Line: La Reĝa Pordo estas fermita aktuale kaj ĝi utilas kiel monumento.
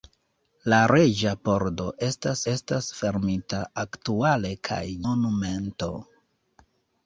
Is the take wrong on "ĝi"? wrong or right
wrong